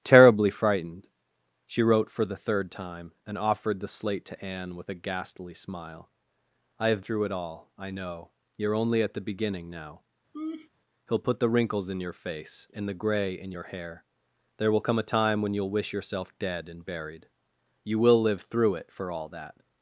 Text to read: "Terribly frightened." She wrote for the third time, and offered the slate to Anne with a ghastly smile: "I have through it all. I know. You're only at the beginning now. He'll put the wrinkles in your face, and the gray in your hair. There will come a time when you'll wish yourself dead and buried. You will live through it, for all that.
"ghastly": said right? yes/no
yes